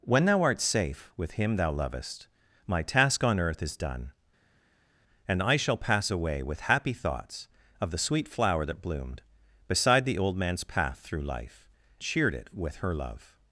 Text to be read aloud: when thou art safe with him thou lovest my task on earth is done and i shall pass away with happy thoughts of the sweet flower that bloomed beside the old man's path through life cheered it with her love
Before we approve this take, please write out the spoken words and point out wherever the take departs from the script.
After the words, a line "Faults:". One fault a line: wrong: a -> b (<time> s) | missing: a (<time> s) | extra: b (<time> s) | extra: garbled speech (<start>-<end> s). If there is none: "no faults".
when thou art safe with him thou lovest my task on earth is done and i shall pass away with happy thoughts of the sweet flower that bloomed beside the old man's path through life cheered it with her love
Faults:
no faults